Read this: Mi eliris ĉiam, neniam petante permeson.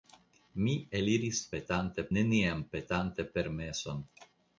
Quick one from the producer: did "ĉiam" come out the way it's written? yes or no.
no